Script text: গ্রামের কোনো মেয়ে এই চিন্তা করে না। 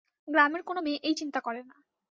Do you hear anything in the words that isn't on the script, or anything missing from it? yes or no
no